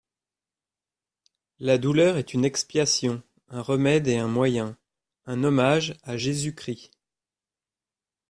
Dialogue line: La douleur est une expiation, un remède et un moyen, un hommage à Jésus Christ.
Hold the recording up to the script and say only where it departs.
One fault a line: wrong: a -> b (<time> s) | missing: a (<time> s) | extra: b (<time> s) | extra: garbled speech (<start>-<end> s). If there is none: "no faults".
no faults